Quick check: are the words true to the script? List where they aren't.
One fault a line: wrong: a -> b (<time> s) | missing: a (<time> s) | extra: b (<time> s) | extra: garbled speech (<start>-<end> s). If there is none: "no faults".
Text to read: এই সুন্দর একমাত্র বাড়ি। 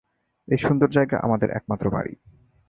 extra: জায়গা আমাদের (0.9 s)